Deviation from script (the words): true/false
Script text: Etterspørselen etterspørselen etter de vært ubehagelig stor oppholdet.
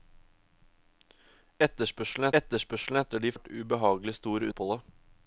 false